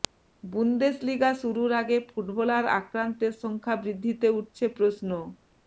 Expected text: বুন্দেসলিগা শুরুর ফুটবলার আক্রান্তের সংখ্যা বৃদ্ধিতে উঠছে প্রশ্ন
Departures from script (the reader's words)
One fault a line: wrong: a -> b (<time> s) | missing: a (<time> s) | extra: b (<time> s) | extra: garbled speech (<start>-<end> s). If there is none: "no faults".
extra: আগে (1.8 s)